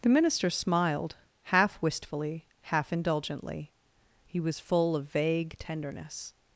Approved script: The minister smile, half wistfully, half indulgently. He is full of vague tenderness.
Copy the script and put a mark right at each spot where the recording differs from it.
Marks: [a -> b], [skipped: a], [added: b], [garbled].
The minister [smile, -> smiled] half wistfully, half indulgently. He [is -> was] full of vague tenderness.